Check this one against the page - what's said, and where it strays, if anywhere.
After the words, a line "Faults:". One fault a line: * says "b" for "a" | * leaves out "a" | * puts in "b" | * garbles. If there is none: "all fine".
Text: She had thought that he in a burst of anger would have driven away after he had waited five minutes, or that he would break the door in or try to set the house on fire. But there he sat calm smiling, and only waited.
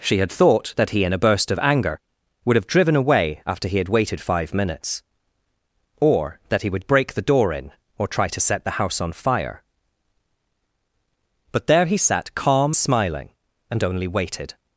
She had thought that he in a burst of anger would have driven away after he had waited five minutes, or that he would break the door in or try to set the house on fire. But there he sat calm smiling, and only waited.
Faults:
all fine